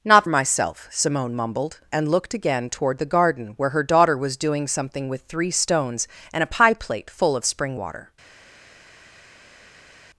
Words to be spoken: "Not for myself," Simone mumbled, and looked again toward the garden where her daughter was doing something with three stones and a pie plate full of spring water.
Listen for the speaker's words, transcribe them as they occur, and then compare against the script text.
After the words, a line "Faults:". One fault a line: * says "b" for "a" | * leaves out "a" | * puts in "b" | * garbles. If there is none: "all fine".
"Not myself," Simone mumbled, and looked again toward the garden where her daughter was doing something with three stones and a pie plate full of spring water.
Faults:
* leaves out "for"